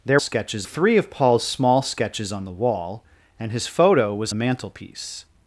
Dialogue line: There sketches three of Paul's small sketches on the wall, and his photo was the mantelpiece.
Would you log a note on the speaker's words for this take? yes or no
no